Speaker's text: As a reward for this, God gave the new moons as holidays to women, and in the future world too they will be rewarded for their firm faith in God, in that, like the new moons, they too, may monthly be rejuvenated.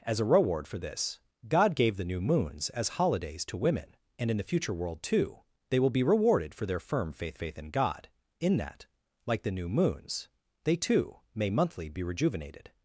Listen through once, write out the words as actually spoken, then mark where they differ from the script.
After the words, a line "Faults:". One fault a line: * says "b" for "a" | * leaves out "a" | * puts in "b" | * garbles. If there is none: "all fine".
As a reward for this, God gave the new moons as holidays to women, and in the future world too they will be rewarded for their firm faith faith in God, in that, like the new moons, they too, may monthly be rejuvenated.
Faults:
* puts in "faith"